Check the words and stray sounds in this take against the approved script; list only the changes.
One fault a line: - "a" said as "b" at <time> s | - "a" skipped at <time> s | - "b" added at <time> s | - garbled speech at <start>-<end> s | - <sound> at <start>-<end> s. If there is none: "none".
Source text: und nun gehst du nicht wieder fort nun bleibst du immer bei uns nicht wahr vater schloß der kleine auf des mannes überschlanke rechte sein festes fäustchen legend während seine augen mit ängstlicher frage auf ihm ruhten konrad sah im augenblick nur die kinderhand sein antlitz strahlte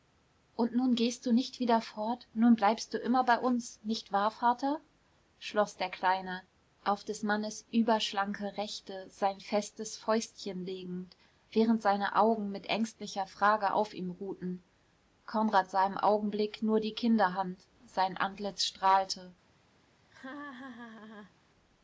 - laugh at 20.1-21.3 s